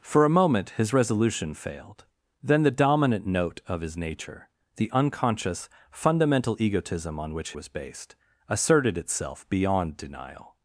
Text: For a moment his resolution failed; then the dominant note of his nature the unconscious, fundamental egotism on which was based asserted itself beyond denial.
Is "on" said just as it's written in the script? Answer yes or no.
yes